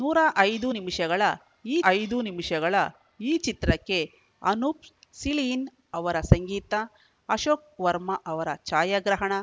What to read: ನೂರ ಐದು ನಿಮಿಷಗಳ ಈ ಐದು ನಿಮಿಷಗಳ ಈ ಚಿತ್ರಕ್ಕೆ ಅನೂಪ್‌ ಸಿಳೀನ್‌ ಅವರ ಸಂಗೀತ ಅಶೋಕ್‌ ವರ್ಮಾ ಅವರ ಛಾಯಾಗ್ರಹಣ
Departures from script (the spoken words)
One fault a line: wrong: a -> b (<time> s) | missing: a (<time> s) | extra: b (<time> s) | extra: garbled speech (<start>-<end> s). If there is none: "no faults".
no faults